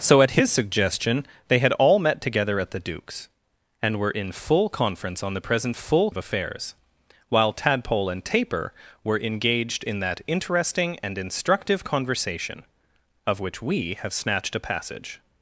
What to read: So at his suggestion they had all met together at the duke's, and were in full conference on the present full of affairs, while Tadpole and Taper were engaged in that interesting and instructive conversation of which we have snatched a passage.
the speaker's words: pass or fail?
pass